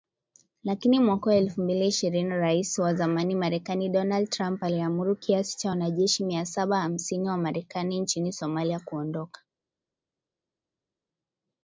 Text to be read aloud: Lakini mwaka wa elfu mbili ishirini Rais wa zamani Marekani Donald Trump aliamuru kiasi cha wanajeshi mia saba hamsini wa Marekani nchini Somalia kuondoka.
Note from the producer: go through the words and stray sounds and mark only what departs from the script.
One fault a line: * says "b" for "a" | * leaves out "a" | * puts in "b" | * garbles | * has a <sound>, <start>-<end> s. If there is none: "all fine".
all fine